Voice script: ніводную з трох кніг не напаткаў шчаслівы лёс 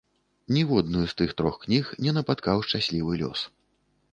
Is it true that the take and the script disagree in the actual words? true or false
true